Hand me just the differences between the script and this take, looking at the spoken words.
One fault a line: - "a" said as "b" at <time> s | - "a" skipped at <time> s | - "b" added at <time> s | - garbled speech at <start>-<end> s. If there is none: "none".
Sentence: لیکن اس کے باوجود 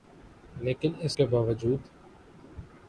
none